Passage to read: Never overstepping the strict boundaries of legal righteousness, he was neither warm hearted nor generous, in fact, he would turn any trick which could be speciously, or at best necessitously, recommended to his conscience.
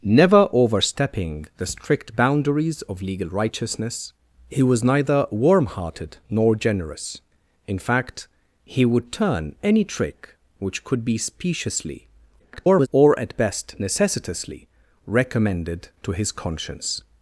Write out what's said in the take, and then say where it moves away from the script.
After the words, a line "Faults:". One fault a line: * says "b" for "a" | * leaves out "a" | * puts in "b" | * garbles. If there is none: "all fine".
Never overstepping the strict boundaries of legal righteousness, he was neither warm hearted nor generous, in fact, he would turn any trick which could be speciously, [garbled] or at best necessitously, recommended to his conscience.
Faults:
* garbles